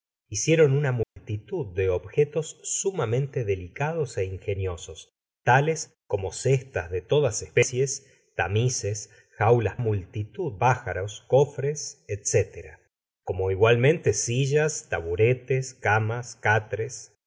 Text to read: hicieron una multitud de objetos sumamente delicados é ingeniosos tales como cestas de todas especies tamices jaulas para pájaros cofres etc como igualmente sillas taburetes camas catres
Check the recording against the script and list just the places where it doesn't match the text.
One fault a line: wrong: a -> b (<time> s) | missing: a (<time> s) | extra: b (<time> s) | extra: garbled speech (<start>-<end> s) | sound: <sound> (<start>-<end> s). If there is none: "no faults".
sound: dropout (1.0-1.2 s)
wrong: para -> multitud (9.8 s)